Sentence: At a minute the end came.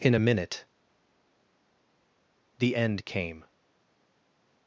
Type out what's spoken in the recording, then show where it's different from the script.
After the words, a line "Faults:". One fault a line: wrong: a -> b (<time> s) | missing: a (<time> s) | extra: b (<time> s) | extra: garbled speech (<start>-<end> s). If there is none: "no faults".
In a minute the end came.
Faults:
wrong: At -> In (0.0 s)